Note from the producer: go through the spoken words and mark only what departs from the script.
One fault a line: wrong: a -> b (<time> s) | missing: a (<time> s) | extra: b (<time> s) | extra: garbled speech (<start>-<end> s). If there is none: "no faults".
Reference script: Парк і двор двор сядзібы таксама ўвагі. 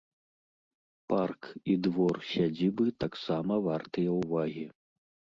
missing: двор (2.2 s)
extra: вартыя (3.7 s)